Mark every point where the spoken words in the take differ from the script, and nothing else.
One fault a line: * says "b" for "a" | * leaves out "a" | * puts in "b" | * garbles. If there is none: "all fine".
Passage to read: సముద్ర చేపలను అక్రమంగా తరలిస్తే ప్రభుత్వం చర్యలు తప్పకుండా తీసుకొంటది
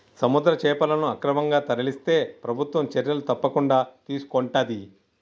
all fine